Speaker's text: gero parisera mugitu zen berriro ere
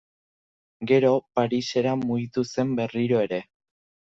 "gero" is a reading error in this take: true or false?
false